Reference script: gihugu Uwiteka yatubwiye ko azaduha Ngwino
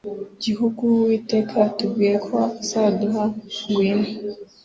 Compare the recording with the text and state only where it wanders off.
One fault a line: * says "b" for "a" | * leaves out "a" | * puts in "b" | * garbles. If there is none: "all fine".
all fine